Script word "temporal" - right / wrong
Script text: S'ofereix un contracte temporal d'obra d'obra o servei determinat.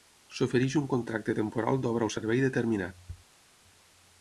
right